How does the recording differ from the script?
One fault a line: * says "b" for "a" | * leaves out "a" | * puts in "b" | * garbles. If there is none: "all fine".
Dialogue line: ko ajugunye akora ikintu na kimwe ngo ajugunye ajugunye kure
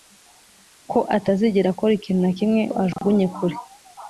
* says "atazigera" for "ajugunye"
* leaves out "ajugunye"